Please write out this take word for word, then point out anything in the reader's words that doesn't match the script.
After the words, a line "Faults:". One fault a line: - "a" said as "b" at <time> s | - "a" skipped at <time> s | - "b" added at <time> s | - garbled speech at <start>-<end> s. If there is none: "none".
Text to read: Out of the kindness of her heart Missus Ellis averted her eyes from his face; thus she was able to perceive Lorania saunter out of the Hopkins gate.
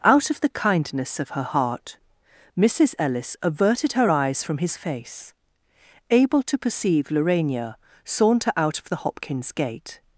Out of the kindness of her heart Missus Ellis averted her eyes from his face; able to perceive Lorania saunter out of the Hopkins gate.
Faults:
- "thus she was" skipped at 5.3 s